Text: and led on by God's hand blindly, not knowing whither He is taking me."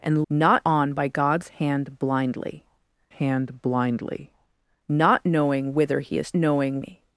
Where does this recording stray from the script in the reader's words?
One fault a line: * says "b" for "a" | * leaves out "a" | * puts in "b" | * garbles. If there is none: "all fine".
* says "not" for "led"
* puts in "hand blindly"
* says "knowing" for "taking"